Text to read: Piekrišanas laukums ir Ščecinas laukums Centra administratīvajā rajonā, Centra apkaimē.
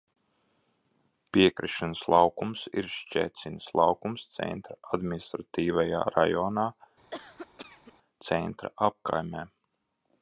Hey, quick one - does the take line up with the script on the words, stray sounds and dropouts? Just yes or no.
no